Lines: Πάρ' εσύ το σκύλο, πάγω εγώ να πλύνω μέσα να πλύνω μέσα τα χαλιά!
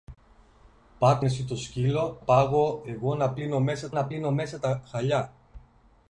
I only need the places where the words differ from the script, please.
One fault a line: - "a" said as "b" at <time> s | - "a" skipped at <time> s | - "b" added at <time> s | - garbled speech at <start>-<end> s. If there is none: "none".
none